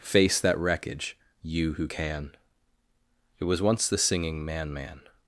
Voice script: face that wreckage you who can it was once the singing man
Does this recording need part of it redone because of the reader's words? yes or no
yes